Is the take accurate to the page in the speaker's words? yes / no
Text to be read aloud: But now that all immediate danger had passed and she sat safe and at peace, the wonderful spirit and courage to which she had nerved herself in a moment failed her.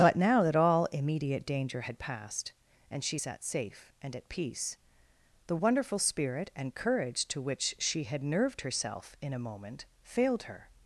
yes